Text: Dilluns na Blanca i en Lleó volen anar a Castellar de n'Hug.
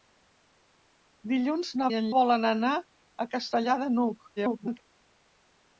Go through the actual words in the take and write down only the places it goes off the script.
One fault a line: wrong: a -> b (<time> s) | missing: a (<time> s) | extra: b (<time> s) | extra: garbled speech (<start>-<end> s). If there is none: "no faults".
missing: Blanca (1.9 s)
missing: Lleó (2.1 s)
extra: garbled speech (4.4-4.8 s)